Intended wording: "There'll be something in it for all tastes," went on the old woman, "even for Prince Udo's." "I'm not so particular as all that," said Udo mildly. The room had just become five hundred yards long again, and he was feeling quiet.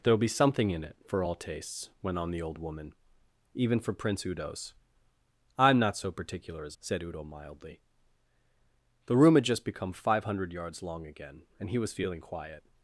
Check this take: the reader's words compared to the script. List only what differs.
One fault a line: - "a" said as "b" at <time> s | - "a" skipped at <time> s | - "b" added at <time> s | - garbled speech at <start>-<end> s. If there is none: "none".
- "all that" skipped at 6.8 s